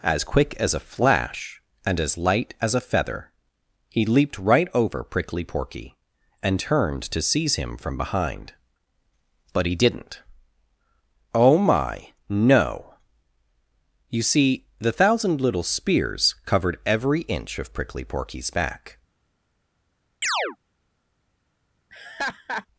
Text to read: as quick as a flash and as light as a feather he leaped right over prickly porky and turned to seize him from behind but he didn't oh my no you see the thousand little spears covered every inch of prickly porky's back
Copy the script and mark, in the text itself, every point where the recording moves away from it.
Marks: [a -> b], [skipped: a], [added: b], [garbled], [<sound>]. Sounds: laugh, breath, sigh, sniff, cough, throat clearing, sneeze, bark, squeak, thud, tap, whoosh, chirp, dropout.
as quick as a flash and as light as a feather he leaped right over prickly porky and turned to seize him from behind but he didn't oh my no you see the thousand little spears covered every inch of prickly porky's back [chirp] [laugh]